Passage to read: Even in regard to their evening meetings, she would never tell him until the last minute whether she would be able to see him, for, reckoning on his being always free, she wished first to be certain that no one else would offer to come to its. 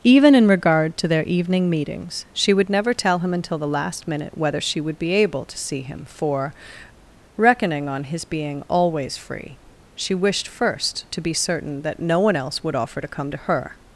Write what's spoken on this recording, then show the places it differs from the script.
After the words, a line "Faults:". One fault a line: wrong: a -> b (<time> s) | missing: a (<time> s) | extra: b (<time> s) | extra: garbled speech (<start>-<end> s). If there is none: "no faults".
Even in regard to their evening meetings, she would never tell him until the last minute whether she would be able to see him, for, reckoning on his being always free, she wished first to be certain that no one else would offer to come to her.
Faults:
wrong: its -> her (13.4 s)